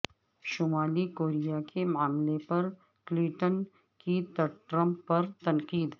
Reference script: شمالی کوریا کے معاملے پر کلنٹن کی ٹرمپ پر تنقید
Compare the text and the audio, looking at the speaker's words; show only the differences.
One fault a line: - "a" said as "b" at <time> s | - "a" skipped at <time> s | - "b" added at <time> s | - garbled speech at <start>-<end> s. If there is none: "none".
none